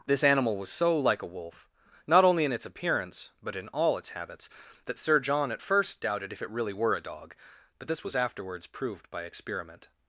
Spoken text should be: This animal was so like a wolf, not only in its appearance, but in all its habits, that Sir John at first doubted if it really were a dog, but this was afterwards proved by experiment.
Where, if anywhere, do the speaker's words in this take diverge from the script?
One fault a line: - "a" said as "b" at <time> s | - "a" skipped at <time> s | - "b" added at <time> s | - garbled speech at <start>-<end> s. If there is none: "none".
none